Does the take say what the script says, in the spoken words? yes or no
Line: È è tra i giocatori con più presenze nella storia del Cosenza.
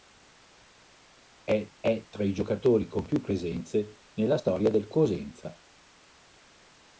yes